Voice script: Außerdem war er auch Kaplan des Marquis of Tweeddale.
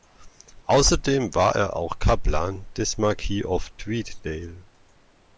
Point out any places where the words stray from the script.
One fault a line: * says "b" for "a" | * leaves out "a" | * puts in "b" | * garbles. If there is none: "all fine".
all fine